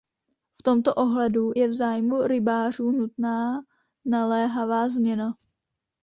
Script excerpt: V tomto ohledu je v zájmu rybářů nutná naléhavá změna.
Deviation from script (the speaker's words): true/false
false